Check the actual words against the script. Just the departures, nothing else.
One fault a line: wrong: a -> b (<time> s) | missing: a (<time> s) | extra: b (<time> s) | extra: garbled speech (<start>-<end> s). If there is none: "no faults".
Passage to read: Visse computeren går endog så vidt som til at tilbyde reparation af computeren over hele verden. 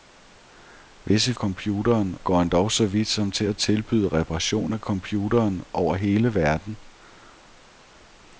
no faults